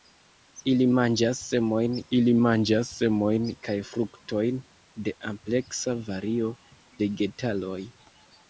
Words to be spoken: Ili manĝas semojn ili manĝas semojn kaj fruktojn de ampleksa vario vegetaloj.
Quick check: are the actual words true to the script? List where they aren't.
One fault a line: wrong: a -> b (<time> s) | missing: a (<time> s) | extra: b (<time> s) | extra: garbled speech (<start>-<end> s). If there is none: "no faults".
no faults